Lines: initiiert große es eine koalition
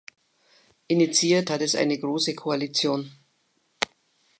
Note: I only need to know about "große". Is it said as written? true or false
false